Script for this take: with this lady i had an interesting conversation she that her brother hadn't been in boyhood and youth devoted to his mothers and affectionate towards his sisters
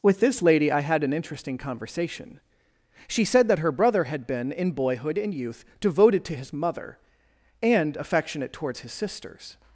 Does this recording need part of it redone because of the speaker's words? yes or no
yes